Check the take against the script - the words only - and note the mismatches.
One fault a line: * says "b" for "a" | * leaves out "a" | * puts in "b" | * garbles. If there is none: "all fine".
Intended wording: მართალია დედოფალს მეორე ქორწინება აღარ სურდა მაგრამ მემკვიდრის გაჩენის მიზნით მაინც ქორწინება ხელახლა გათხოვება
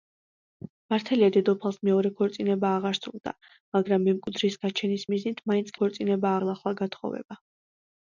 all fine